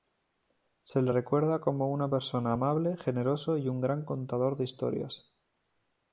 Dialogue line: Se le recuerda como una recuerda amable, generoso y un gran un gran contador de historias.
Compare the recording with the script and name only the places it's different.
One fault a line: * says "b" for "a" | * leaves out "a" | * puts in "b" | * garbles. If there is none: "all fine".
* says "persona" for "recuerda"
* leaves out "un gran"